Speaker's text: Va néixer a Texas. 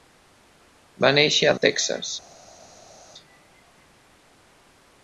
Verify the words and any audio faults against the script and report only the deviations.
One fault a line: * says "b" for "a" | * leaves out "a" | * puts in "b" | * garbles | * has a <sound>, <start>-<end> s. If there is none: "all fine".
all fine